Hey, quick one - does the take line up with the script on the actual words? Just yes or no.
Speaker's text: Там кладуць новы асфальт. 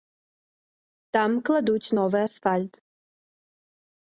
yes